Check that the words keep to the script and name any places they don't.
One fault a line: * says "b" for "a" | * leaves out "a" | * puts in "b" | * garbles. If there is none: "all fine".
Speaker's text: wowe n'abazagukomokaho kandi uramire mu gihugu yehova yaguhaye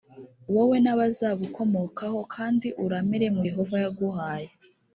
* leaves out "gihugu"